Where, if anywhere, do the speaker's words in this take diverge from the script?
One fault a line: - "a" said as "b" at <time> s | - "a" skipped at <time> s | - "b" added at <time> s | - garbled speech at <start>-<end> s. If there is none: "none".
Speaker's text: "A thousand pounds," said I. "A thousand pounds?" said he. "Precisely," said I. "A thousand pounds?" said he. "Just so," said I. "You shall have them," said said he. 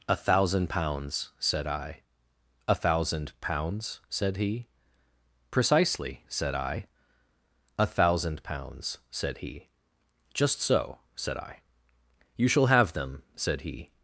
- "said" skipped at 13.6 s